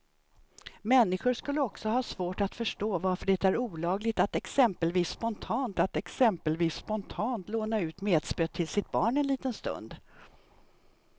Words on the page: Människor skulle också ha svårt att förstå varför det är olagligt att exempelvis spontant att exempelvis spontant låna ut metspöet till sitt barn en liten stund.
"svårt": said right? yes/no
yes